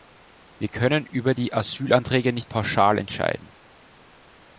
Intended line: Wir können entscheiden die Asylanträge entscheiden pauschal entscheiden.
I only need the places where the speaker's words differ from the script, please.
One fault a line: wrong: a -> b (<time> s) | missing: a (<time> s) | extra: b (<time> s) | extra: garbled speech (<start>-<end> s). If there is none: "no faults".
wrong: entscheiden -> über (1.1 s)
wrong: entscheiden -> nicht (2.3 s)